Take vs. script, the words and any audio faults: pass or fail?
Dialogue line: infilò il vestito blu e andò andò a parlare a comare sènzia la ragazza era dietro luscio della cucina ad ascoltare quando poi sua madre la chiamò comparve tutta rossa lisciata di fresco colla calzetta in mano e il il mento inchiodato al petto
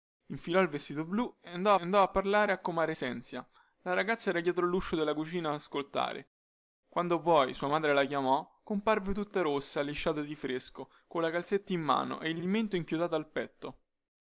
pass